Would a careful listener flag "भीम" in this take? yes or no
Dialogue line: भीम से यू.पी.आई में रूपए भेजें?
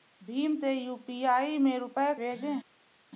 no